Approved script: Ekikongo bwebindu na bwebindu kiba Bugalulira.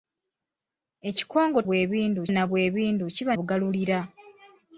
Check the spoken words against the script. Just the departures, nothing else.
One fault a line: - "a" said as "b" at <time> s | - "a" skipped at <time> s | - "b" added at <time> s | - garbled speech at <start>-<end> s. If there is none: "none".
none